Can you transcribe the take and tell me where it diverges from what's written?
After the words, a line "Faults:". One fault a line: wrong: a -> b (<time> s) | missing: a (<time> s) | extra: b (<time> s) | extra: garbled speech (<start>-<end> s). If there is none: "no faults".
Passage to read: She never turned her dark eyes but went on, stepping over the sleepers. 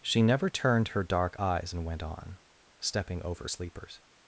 She never turned her dark eyes and went on, stepping over sleepers.
Faults:
wrong: but -> and (1.7 s)
missing: the (3.5 s)